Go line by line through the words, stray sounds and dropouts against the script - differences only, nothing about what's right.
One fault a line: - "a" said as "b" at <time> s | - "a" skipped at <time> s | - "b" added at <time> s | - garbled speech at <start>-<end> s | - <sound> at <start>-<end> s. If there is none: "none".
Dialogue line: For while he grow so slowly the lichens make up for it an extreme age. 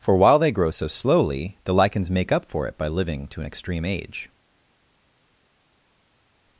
- "he" said as "they" at 0.4 s
- "by living to" added at 2.8 s